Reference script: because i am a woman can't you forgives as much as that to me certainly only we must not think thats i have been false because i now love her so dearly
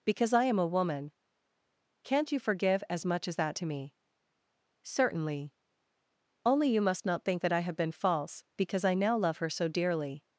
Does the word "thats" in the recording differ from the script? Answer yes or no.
yes